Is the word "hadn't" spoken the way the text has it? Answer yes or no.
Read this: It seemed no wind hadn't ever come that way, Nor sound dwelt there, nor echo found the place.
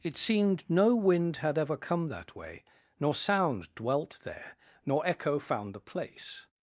no